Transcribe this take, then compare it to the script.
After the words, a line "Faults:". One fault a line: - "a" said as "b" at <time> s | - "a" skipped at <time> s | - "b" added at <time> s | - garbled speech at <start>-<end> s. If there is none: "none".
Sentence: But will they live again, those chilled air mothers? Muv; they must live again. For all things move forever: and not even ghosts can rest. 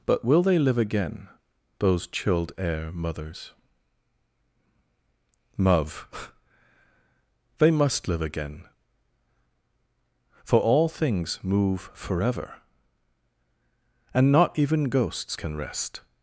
But will they live again, those chilled air mothers? Muv; they must live again. For all things move forever: and not even ghosts can rest.
Faults:
none